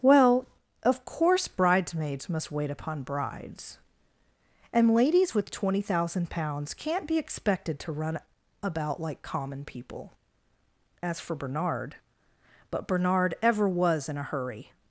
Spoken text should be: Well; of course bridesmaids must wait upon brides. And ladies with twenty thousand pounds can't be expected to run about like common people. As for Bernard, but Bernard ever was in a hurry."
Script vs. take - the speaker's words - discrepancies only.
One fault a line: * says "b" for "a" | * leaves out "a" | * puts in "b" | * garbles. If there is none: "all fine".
all fine